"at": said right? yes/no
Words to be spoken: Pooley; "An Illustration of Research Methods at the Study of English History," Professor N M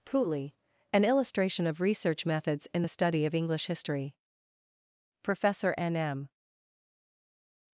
no